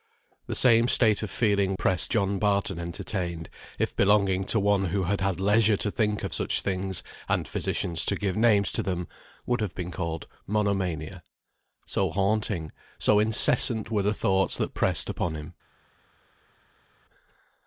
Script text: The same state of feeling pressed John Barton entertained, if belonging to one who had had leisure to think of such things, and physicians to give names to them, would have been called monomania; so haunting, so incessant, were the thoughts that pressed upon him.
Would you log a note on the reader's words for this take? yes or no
no